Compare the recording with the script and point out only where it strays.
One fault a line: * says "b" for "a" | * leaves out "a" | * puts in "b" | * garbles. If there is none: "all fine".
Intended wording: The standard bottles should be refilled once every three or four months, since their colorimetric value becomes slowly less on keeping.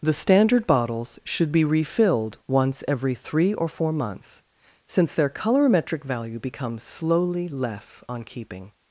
all fine